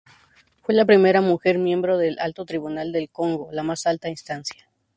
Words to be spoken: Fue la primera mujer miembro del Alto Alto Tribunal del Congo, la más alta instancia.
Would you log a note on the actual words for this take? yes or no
yes